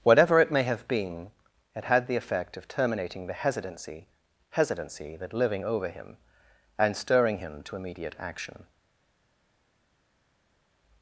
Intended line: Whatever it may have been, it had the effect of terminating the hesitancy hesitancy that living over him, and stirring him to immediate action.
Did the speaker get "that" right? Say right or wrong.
right